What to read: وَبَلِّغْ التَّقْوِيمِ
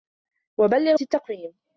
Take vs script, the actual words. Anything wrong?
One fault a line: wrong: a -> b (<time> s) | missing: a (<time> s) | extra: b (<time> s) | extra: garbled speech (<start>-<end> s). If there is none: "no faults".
no faults